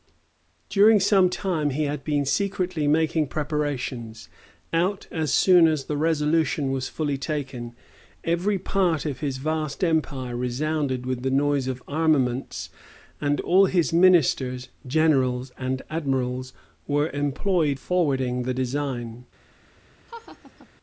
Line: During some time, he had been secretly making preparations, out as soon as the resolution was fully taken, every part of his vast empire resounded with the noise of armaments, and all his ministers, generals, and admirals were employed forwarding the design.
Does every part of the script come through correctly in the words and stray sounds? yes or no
no